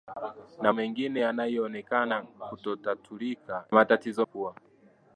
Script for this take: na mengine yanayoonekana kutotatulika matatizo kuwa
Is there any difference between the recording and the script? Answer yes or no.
no